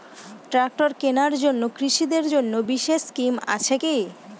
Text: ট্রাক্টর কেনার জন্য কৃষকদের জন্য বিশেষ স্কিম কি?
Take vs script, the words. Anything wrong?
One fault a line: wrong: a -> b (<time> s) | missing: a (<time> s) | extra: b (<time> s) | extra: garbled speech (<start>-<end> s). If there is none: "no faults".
extra: আছে (3.5 s)